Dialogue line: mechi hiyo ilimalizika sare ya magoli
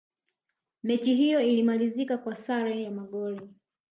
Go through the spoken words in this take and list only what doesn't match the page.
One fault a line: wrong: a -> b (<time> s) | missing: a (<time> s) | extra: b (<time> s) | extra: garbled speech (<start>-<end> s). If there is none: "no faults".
extra: kwa (2.2 s)